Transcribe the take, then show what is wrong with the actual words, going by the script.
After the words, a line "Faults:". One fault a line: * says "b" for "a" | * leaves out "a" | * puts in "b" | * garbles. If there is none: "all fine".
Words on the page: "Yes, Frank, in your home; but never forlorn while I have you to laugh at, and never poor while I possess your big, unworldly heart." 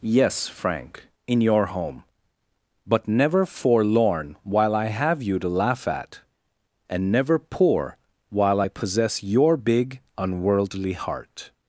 "Yes, Frank, in your home; but never forlorn while I have you to laugh at, and never poor while I possess your big, unworldly heart."
Faults:
all fine